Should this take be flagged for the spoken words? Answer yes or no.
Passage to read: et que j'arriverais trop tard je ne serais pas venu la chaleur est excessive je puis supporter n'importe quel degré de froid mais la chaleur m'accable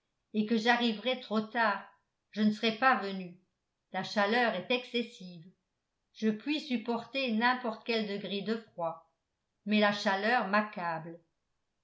no